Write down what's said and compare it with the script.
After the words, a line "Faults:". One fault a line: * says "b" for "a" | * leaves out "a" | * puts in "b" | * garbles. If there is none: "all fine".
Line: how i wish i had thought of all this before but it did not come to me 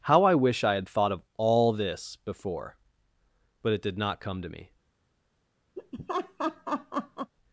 how i wish i had thought of all this before but it did not come to me
Faults:
all fine